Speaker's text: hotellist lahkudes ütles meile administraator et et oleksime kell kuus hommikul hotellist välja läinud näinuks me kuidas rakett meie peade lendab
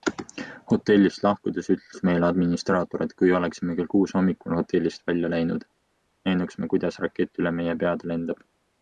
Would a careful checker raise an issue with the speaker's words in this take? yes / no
yes